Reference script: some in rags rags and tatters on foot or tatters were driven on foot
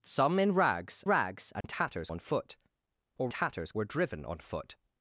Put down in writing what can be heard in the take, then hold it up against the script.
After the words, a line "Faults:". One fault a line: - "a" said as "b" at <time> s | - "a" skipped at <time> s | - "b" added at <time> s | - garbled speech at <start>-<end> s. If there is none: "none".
some in rags rags and tatters on foot or tatters were driven on foot
Faults:
none